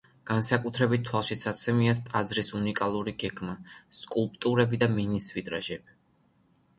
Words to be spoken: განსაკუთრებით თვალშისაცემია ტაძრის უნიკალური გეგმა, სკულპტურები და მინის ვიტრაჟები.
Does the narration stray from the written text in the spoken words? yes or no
no